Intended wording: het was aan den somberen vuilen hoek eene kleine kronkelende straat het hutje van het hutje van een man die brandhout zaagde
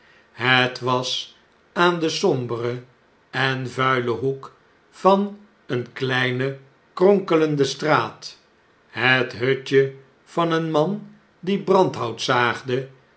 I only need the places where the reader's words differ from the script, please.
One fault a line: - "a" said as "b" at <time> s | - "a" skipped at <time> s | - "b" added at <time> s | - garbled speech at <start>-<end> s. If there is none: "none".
- "en" added at 3.3 s
- "van" added at 4.9 s
- "het hutje van" skipped at 10.5 s